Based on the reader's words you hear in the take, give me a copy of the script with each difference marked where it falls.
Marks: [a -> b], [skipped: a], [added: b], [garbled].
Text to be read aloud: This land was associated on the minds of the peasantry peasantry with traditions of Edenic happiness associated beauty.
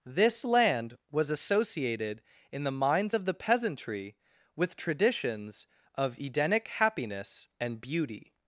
This land was associated [on -> in] the minds of the peasantry [skipped: peasantry] with traditions of Edenic happiness [associated -> and] beauty.